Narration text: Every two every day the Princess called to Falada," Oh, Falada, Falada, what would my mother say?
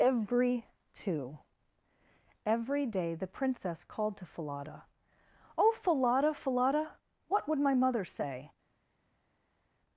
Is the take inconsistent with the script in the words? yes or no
no